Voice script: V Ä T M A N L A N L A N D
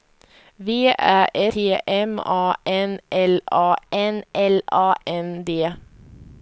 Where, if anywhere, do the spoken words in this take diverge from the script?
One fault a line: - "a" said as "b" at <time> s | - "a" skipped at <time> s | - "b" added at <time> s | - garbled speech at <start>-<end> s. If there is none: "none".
none